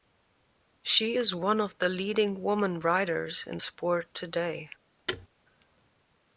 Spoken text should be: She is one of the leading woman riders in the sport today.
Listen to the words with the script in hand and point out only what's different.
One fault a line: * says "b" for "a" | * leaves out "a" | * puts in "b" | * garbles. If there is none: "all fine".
* leaves out "the"